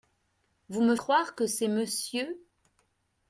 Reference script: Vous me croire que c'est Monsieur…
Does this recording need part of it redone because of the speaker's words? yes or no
no